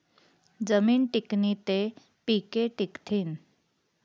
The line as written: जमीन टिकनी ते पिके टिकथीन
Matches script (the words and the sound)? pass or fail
pass